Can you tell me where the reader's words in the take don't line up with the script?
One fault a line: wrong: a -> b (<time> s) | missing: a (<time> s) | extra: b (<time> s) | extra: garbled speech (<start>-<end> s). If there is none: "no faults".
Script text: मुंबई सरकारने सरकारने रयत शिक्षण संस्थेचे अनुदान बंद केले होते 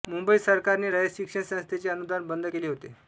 missing: सरकारने (0.9 s)